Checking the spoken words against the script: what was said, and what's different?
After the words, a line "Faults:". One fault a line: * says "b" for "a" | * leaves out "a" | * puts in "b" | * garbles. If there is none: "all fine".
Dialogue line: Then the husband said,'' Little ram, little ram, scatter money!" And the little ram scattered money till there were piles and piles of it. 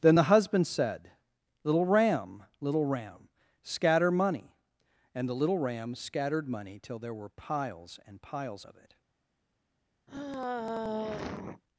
Then the husband said,'' Little ram, little ram, scatter money!" And the little ram scattered money till there were piles and piles of it.
Faults:
all fine